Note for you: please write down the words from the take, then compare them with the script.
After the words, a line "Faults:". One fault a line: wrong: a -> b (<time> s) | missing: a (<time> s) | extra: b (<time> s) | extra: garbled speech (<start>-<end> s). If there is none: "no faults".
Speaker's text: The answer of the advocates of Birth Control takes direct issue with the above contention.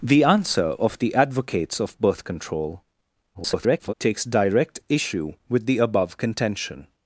The answer of the advocates of Birth Control [garbled] takes direct issue with the above contention.
Faults:
extra: garbled speech (3.3-3.9 s)